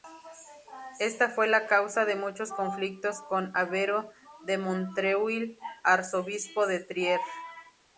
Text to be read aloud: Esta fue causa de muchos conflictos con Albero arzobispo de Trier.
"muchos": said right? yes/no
yes